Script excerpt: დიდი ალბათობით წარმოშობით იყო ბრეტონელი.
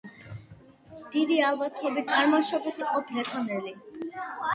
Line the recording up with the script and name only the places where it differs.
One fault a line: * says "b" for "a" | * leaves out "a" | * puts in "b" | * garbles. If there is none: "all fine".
all fine